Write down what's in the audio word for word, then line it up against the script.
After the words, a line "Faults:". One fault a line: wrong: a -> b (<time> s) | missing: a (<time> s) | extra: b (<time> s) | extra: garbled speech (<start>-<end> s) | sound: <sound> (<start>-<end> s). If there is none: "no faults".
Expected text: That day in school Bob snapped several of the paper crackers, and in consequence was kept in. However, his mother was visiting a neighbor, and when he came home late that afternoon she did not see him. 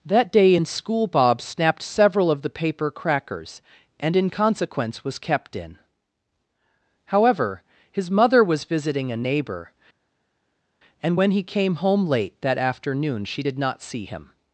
That day in school Bob snapped several of the paper crackers, and in consequence was kept in. However, his mother was visiting a neighbor, and when he came home late that afternoon she did not see him.
Faults:
no faults